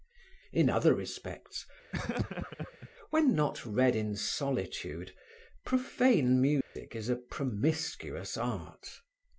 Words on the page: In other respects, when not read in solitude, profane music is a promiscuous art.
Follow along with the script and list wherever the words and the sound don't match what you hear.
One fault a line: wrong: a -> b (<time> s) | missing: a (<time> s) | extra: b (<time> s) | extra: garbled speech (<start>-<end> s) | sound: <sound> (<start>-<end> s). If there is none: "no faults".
sound: laugh (1.9-2.9 s)
sound: dropout (6.6-6.8 s)